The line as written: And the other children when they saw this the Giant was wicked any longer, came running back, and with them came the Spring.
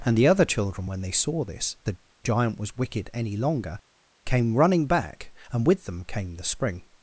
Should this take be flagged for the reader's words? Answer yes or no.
no